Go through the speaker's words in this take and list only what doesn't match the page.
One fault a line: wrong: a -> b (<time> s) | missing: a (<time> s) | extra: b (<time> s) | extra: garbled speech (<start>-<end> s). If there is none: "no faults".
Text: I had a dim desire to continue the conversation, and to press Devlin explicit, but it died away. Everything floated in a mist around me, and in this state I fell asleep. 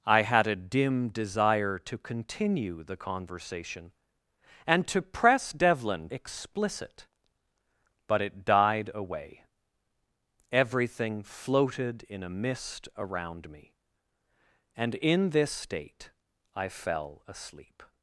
no faults